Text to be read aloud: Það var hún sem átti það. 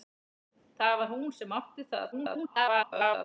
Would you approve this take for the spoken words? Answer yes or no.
no